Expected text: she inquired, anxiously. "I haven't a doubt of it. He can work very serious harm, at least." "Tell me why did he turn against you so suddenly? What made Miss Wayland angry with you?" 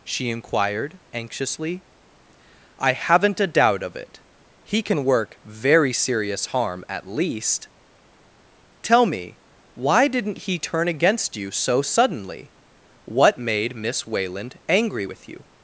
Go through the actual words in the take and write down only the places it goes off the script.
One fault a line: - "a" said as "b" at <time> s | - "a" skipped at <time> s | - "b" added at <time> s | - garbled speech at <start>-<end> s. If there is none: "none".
- "did" said as "didn't" at 10.1 s